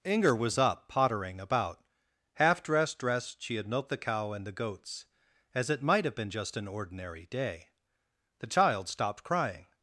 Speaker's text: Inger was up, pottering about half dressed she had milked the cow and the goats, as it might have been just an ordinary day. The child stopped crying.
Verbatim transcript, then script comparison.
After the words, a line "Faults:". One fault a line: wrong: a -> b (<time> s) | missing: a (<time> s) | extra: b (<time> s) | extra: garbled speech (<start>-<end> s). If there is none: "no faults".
Inger was up, pottering about half dressed dressed she had milked the cow and the goats, as it might have been just an ordinary day. The child stopped crying.
Faults:
extra: dressed (3.0 s)